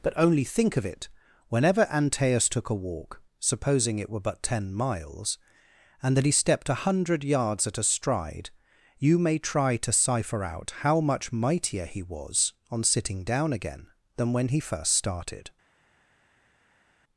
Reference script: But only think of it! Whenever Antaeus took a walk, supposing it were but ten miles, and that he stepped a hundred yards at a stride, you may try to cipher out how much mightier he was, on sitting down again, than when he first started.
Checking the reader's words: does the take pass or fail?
pass